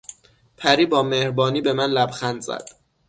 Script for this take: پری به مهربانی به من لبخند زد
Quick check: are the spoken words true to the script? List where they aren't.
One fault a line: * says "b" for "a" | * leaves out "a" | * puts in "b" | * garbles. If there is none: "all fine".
* says "با" for "به"